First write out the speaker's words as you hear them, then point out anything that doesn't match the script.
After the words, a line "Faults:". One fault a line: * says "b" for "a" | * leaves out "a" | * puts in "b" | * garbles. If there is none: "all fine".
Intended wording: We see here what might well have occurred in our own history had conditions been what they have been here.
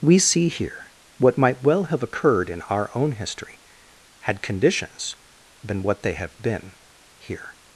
We see here what might well have occurred in our own history had conditions been what they have been here.
Faults:
all fine